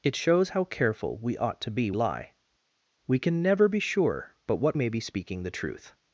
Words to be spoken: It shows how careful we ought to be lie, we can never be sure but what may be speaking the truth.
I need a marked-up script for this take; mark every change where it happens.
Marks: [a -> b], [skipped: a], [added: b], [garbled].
It shows how careful we ought to be lie, we can never be sure but what may be speaking the truth.